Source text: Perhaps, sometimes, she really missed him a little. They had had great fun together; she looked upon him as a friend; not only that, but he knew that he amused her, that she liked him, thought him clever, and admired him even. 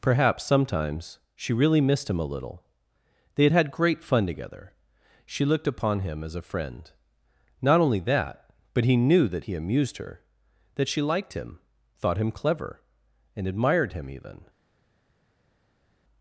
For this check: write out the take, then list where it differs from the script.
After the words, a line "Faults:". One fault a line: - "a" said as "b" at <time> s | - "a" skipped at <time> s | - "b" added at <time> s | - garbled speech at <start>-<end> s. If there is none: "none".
Perhaps, sometimes, she really missed him a little. They had had great fun together; she looked upon him as a friend; not only that, but he knew that he amused her, that she liked him, thought him clever, and admired him even.
Faults:
none